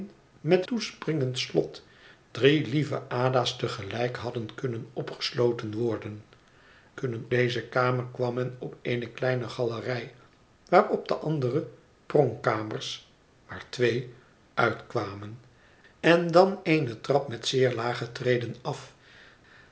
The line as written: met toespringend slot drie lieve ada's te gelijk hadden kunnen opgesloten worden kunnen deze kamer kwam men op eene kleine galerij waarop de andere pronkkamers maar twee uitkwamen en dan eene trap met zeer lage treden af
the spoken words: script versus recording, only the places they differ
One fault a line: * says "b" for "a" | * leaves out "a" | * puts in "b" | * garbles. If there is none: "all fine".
all fine